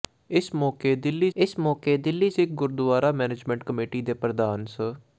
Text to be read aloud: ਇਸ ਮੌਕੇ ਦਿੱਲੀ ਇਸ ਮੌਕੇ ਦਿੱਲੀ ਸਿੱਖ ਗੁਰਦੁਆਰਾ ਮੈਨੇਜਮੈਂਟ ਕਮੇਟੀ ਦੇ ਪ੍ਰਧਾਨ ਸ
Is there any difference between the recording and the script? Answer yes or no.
no